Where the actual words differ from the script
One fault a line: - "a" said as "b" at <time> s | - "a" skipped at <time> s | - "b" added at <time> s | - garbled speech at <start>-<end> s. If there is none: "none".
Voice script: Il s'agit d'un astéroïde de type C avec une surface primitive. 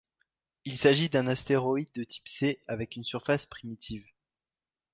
none